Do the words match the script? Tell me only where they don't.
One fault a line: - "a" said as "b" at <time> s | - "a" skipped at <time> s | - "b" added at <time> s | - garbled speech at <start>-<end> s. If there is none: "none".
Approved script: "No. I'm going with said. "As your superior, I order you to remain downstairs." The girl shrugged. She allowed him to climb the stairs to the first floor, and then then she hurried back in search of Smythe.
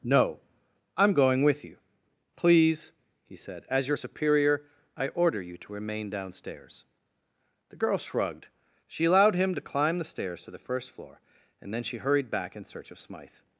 - "you Please he" added at 1.6 s
- "then" skipped at 11.8 s